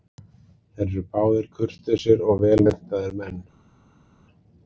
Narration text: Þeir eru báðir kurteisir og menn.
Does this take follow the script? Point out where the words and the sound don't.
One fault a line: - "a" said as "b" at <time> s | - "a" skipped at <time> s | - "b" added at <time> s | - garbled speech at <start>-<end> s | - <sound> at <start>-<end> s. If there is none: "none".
- "vel menntaðir" added at 2.5 s